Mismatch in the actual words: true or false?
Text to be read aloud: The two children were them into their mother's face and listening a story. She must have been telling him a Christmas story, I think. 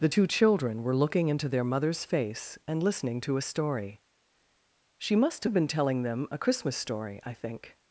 true